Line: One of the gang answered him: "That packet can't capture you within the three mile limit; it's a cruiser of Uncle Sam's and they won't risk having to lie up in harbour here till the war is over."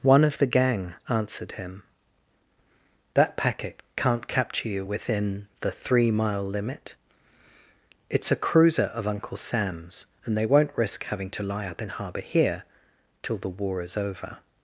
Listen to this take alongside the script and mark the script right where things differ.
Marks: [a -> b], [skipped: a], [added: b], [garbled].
One of the gang answered him: "That packet can't capture you within the three mile limit; it's a cruiser of Uncle Sam's and they won't risk having to lie up in harbour here till the war is over."